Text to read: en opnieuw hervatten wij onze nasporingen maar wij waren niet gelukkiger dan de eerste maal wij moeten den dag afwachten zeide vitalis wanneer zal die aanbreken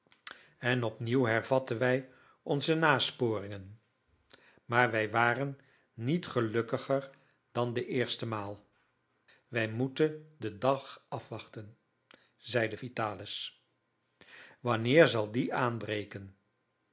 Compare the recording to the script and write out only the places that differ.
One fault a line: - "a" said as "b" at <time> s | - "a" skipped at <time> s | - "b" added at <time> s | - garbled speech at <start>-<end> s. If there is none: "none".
none